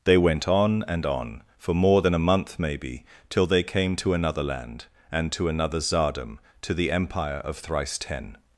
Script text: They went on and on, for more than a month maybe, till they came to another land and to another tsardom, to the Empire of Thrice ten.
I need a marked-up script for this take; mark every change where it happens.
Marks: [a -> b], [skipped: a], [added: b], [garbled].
They went on and on, for more than a month maybe, till they came to another land and to another tsardom, to the Empire of Thrice ten.